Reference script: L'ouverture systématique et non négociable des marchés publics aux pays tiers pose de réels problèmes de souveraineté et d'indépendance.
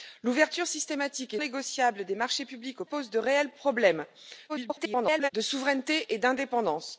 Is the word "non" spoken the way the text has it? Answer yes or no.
no